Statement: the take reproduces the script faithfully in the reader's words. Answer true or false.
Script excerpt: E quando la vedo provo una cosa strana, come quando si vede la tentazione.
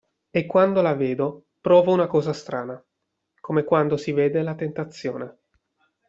true